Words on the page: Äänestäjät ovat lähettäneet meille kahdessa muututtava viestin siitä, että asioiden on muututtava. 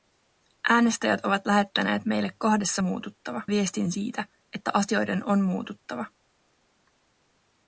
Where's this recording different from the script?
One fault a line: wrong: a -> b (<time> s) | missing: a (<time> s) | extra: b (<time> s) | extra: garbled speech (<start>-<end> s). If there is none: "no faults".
no faults